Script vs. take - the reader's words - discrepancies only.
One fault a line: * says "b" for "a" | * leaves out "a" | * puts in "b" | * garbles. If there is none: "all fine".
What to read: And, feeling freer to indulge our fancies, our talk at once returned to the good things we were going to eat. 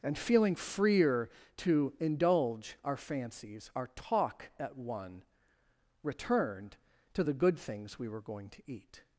* says "one" for "once"